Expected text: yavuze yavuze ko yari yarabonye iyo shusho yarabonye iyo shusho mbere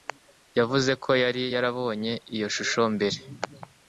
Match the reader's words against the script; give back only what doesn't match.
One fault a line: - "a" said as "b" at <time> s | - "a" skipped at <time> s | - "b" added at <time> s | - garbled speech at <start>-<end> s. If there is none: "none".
- "yavuze" skipped at 0.9 s
- "yarabonye iyo shusho" skipped at 2.8 s